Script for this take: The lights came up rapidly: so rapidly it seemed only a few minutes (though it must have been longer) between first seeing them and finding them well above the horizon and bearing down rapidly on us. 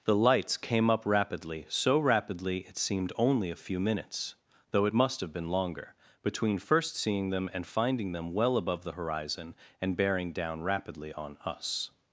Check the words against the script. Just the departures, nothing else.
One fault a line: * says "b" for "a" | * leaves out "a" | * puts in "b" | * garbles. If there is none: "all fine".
all fine